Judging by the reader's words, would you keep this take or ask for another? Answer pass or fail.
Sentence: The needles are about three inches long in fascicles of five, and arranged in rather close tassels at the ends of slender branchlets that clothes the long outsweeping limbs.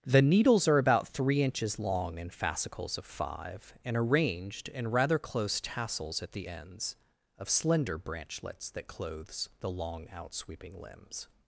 pass